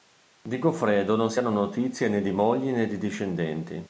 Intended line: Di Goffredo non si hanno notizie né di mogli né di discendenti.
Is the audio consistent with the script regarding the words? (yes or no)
yes